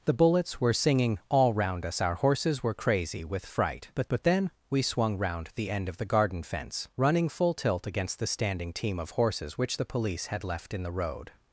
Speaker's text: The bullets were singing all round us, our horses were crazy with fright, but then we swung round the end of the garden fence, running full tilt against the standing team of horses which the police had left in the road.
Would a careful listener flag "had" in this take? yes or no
no